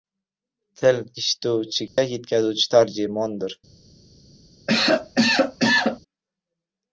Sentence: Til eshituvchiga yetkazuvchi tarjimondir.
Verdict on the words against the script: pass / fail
pass